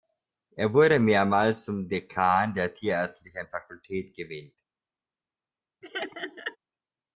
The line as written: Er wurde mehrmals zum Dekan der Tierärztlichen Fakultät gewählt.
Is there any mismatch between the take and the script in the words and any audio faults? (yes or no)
yes